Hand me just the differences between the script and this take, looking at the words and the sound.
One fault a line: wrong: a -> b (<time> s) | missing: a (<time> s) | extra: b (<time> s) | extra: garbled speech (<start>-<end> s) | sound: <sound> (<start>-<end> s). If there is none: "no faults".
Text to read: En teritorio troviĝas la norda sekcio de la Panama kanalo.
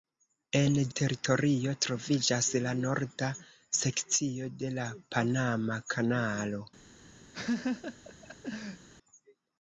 sound: laugh (7.3-8.9 s)